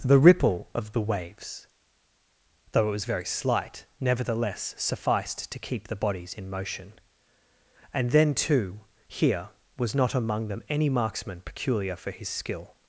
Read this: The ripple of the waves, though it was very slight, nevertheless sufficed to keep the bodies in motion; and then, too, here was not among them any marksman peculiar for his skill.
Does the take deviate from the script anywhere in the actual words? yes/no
no